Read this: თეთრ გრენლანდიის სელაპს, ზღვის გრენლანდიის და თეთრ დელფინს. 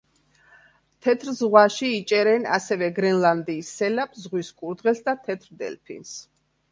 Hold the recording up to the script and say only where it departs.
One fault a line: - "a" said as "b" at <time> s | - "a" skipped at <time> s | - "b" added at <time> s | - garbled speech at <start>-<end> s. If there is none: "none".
- "ზღვაში იჭერენ ასევე" added at 1.4 s
- "გრენლანდიის" said as "კურდღელს" at 4.6 s